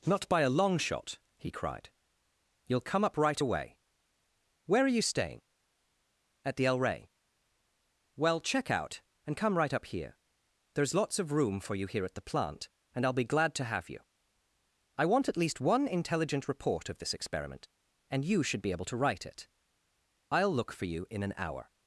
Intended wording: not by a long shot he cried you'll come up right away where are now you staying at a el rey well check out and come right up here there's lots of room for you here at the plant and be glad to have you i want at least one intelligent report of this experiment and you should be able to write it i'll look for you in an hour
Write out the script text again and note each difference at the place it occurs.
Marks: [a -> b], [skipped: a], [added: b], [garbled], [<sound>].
not by a long shot he cried you'll come up right away where are [skipped: now] you staying at [a -> the] el rey well check out and come right up here there's lots of room for you here at the plant and [added: i'll] be glad to have you i want at least one intelligent report of this experiment and you should be able to write it i'll look for you in an hour